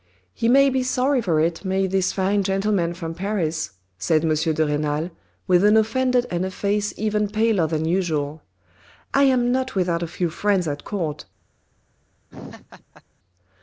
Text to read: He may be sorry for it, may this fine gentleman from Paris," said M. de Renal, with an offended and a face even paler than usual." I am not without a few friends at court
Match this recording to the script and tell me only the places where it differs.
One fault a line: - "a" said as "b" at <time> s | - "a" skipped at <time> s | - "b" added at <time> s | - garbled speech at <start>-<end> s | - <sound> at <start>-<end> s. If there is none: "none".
- laugh at 12.3-13.0 s